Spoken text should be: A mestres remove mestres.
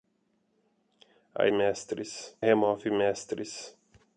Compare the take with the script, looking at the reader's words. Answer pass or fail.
pass